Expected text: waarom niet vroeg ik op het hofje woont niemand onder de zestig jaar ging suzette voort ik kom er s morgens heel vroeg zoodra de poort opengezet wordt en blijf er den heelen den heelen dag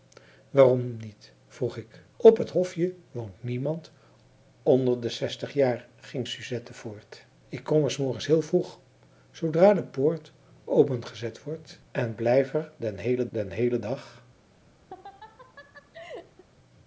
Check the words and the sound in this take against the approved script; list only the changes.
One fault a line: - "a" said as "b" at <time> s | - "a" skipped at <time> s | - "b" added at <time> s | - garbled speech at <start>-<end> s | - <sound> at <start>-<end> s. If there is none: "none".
- laugh at 14.9-16.4 s